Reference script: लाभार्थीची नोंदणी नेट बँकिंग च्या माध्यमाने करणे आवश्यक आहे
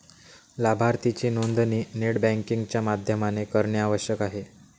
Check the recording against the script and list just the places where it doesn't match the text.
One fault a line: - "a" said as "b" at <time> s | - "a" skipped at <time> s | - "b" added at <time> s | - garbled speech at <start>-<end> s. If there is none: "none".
none